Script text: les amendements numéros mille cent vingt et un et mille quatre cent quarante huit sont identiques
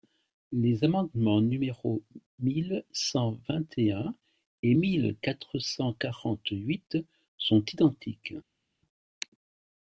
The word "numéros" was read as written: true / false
true